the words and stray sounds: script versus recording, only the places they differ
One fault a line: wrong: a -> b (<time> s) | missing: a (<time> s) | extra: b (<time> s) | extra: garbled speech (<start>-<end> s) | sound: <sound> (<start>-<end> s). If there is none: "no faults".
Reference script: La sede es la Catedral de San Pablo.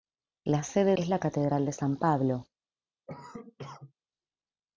sound: cough (3.1-3.9 s)